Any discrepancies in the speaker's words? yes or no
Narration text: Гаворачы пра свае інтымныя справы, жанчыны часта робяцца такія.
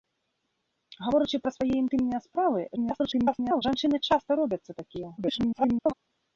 yes